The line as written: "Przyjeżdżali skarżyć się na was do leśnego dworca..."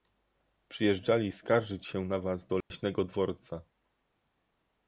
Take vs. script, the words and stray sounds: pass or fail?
fail